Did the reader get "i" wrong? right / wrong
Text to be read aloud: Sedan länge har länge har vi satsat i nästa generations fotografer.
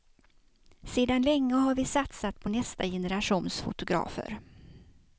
wrong